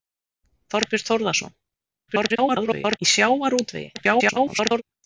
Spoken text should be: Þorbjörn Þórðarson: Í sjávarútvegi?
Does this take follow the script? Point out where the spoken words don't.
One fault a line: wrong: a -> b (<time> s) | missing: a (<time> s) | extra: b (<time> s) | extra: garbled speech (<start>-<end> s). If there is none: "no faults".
extra: garbled speech (2.1-3.0 s)
extra: garbled speech (3.9-4.8 s)